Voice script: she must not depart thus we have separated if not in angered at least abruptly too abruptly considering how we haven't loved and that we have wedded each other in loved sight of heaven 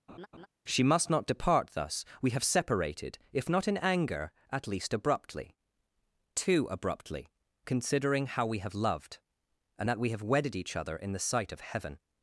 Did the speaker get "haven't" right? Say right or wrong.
wrong